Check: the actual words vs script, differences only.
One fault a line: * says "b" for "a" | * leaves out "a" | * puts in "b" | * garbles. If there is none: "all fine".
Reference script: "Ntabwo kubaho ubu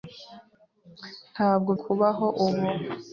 all fine